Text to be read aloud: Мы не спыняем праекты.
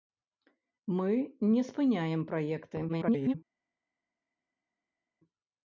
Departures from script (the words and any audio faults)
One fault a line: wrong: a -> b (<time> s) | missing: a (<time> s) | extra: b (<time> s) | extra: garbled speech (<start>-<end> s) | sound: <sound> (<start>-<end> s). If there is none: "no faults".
extra: garbled speech (2.9-3.3 s)